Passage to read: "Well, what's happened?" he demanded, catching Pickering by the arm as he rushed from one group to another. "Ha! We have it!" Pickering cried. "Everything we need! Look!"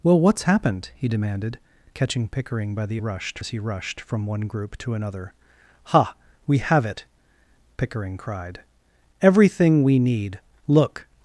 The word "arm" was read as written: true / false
false